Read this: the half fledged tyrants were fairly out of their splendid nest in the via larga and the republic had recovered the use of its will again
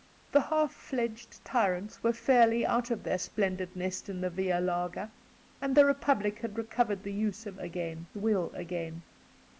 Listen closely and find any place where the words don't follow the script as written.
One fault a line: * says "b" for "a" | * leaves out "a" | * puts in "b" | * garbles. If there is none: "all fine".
* says "again" for "its"